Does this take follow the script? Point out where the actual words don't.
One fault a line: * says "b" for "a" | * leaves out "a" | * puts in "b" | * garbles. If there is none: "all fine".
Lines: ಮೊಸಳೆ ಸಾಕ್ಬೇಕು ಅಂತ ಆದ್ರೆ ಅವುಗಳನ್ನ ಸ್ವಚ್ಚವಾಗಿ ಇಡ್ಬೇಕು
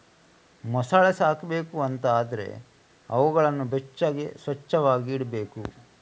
* puts in "ಬೆಚ್ಚಗೆ"